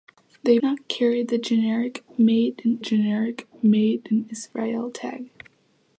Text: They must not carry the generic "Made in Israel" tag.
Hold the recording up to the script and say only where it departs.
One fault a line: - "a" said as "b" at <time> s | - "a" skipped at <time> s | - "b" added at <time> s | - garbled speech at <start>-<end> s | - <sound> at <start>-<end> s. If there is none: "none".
- "must" skipped at 0.6 s
- "generic Made in" added at 2.8 s